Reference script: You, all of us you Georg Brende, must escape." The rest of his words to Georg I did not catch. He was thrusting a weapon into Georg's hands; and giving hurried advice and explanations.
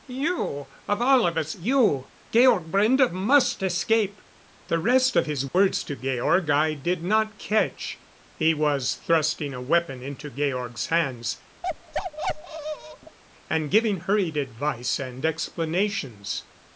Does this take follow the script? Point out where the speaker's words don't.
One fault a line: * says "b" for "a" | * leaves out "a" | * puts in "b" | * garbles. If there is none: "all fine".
* puts in "of"